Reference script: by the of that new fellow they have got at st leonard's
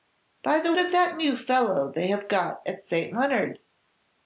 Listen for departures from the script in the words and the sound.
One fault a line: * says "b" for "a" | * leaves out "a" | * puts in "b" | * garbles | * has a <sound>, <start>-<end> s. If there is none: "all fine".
all fine